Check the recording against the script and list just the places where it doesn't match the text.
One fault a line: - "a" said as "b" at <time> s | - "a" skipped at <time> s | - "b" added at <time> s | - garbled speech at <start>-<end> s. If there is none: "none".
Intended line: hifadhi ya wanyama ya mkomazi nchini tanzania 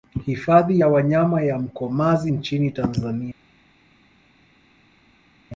none